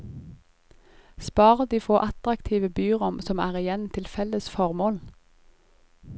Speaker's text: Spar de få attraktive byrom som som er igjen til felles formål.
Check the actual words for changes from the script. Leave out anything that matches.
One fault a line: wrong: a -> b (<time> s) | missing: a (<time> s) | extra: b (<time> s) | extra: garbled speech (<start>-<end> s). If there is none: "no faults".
missing: som (3.4 s)